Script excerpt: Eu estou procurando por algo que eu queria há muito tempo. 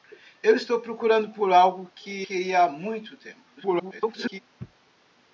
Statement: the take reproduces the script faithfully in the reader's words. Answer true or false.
false